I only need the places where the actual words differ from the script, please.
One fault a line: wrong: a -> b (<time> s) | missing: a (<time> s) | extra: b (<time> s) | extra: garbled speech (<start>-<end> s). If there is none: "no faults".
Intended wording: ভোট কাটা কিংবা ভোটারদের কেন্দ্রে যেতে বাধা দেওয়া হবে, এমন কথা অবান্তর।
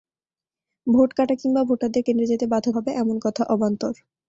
missing: দেওয়া (2.7 s)